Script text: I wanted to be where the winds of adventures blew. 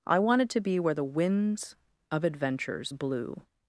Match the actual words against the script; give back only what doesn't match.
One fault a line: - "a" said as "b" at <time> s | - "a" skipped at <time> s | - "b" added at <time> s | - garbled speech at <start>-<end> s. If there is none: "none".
none